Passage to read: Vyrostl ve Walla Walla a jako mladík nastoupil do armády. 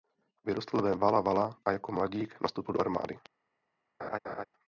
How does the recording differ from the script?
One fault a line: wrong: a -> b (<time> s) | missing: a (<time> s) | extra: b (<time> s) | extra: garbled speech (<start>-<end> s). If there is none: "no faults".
no faults